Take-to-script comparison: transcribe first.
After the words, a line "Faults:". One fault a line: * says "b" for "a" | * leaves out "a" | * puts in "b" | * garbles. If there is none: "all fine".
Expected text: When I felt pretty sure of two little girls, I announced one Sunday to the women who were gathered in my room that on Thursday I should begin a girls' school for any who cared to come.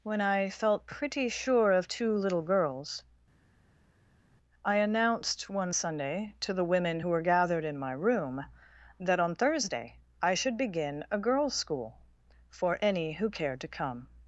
When I felt pretty sure of two little girls, I announced one Sunday to the women who were gathered in my room that on Thursday I should begin a girls' school for any who cared to come.
Faults:
all fine